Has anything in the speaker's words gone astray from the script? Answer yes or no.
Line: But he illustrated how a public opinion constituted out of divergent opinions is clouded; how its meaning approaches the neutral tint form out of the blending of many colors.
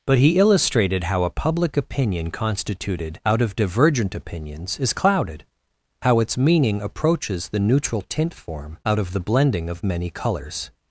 no